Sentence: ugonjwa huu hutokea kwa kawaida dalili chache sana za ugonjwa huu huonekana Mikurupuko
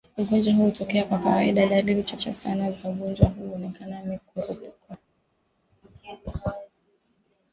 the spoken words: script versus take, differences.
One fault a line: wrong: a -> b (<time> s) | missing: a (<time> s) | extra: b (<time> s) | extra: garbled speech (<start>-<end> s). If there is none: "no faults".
no faults